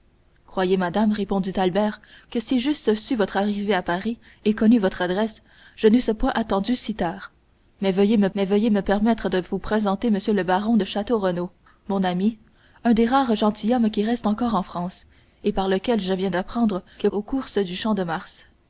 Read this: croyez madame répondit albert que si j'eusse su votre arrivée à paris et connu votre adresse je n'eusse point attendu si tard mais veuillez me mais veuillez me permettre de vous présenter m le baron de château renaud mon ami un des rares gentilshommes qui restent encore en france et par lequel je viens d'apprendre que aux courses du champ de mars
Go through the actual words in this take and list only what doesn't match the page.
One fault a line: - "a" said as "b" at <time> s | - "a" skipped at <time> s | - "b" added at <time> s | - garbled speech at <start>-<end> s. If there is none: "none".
none